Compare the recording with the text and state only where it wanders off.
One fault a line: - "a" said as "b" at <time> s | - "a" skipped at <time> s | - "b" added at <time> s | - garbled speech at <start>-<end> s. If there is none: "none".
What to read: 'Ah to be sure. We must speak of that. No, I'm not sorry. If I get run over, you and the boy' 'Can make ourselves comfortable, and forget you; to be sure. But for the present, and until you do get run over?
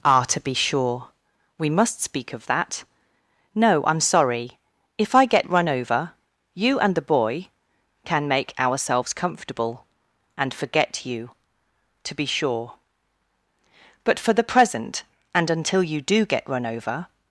- "not" skipped at 4.0 s